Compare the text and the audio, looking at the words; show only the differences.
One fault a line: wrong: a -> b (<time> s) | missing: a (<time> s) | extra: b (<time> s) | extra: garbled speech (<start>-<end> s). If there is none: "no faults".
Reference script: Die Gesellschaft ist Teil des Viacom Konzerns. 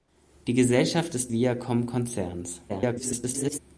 missing: Teil des (1.3 s)
extra: garbled speech (2.7-3.6 s)